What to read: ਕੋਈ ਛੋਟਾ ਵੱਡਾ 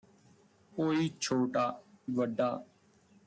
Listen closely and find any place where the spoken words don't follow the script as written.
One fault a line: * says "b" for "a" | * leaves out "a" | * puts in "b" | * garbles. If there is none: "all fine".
all fine